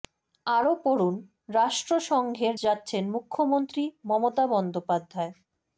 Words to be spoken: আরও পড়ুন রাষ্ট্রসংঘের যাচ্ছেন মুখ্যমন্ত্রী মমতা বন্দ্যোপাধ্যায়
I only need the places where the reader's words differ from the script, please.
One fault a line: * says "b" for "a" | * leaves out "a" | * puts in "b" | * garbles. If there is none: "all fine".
all fine